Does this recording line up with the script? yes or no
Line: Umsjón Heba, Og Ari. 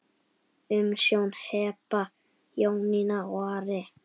no